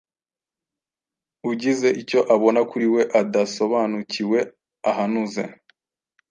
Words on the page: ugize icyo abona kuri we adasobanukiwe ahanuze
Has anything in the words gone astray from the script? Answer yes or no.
no